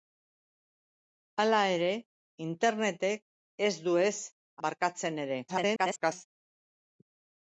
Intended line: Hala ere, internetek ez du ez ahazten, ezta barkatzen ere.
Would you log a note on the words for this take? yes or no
yes